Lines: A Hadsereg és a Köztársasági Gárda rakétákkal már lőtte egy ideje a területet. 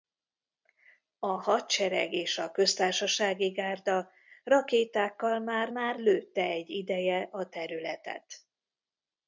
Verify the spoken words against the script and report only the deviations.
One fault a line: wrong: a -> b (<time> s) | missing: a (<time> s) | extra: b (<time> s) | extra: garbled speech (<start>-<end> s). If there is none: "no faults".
extra: már (5.7 s)